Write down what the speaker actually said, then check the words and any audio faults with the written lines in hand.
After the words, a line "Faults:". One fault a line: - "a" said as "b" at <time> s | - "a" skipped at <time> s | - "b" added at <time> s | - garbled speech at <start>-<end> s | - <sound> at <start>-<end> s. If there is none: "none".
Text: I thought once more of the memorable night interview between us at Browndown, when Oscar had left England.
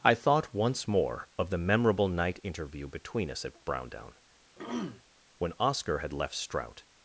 I thought once more of the memorable night interview between us at Browndown, when Oscar had left Strout.
Faults:
- throat clearing at 4.6-5.0 s
- "England" said as "Strout" at 6.3 s